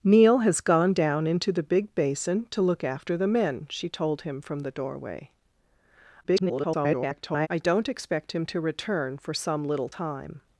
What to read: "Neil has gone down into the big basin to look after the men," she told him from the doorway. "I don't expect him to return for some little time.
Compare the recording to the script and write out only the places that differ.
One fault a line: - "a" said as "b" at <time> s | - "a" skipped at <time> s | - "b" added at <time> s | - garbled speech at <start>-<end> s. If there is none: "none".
- garbled speech at 6.2-7.5 s